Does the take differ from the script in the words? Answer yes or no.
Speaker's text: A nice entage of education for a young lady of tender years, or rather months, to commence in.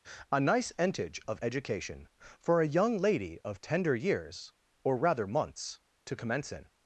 no